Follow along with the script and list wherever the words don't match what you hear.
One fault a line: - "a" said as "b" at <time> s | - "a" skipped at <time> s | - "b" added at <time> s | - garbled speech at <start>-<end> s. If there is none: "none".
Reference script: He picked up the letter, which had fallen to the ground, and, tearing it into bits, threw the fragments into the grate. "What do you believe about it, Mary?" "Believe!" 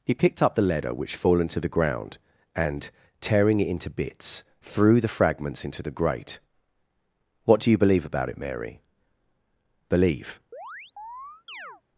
- "had" skipped at 1.1 s